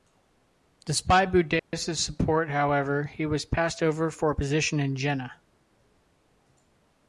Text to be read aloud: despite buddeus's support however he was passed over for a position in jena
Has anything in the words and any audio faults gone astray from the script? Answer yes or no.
yes